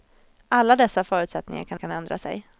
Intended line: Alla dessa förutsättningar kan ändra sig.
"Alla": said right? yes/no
yes